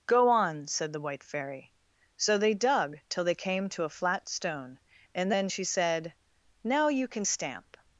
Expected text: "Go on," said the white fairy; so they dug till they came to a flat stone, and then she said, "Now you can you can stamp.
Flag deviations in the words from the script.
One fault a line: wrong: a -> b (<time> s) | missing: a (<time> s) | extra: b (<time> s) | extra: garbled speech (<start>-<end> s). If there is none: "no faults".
missing: you can (7.2 s)